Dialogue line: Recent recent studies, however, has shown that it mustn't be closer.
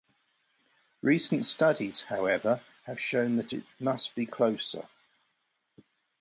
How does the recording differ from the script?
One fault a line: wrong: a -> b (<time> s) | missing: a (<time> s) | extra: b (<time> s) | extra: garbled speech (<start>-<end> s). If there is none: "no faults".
missing: recent (1.4 s)
wrong: has -> have (2.9 s)
wrong: mustn't -> must (3.8 s)